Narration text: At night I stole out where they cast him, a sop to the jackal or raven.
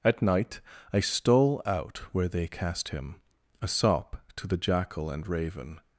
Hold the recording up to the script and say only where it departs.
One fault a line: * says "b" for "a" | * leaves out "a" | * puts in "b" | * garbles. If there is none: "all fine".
* says "and" for "or"